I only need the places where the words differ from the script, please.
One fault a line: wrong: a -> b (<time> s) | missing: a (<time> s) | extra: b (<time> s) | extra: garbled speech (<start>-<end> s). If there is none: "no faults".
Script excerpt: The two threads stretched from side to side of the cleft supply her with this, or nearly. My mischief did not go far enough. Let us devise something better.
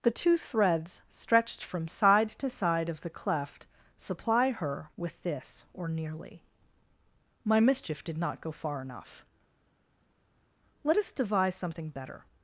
no faults